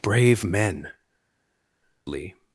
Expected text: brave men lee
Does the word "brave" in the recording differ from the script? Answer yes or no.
no